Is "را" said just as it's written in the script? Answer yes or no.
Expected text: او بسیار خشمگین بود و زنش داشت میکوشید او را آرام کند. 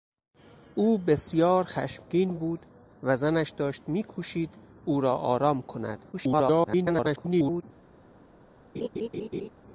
yes